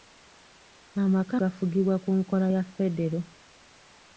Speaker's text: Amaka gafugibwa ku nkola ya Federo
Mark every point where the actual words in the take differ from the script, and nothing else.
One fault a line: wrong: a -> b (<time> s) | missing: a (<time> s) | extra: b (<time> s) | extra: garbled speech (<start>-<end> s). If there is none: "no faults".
no faults